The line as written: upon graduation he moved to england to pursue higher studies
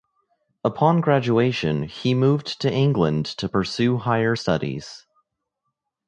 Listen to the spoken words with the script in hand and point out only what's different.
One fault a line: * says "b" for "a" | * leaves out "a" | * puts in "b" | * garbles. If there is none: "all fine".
all fine